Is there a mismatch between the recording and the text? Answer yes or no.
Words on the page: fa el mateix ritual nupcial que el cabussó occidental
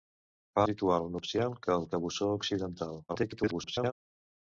yes